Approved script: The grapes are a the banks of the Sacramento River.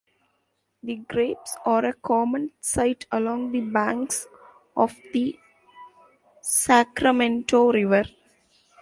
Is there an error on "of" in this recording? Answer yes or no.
no